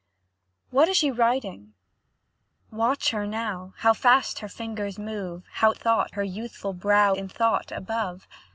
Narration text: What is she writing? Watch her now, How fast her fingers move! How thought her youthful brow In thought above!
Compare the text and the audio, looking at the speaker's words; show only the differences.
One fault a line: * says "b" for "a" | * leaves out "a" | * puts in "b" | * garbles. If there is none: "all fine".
all fine